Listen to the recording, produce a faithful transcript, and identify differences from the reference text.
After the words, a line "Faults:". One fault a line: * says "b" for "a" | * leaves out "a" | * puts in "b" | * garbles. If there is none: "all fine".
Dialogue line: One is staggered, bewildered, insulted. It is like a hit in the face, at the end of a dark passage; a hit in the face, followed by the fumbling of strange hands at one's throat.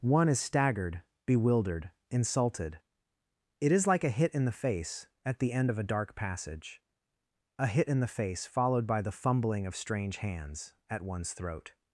One is staggered, bewildered, insulted. It is like a hit in the face, at the end of a dark passage; a hit in the face, followed by the fumbling of strange hands at one's throat.
Faults:
all fine